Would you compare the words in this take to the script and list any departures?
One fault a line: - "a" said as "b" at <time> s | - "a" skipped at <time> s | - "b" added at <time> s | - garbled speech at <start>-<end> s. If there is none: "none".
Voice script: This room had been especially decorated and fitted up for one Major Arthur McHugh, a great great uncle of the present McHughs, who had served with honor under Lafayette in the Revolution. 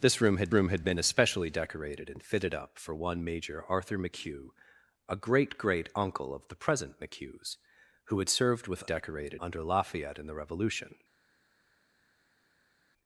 - "room had" added at 0.5 s
- "honor" said as "decorated" at 8.8 s